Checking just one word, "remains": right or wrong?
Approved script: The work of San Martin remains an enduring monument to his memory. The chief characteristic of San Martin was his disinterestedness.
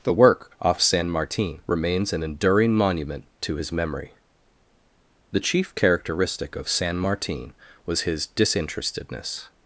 right